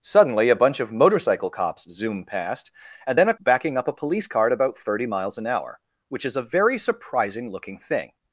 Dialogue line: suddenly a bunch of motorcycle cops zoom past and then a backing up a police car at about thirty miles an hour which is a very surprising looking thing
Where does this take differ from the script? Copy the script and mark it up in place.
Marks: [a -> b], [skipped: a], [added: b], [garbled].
suddenly a bunch of motorcycle cops zoom past and then a backing up a police car at about thirty miles an hour which is a very surprising looking thing